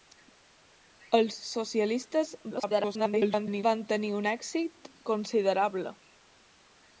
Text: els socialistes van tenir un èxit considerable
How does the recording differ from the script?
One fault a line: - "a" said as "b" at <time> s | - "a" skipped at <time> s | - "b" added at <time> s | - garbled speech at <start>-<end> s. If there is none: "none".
- garbled speech at 2.5-3.6 s